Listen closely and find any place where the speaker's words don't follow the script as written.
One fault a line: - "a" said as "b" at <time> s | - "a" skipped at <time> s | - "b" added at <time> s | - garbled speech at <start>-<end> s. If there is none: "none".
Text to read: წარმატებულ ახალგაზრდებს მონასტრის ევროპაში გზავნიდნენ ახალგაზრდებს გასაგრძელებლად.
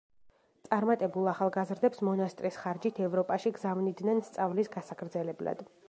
- "ხარჯით" added at 2.6 s
- "ახალგაზრდებს" said as "სწავლის" at 4.3 s